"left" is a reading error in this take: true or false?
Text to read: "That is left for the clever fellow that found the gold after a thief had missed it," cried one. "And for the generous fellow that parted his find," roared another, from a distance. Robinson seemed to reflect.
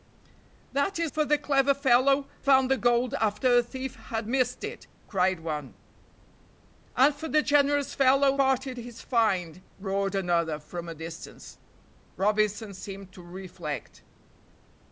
true